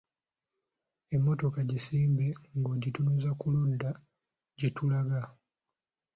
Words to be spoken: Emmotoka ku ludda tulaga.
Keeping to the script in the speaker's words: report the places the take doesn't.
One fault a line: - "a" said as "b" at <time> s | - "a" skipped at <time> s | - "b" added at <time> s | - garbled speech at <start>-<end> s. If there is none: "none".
- "gisimbe ng'ogitunuza" added at 1.7 s
- "gye" added at 4.6 s